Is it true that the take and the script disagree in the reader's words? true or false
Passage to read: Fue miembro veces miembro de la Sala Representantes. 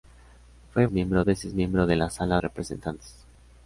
false